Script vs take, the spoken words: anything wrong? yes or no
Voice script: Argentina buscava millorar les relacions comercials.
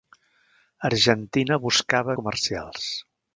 yes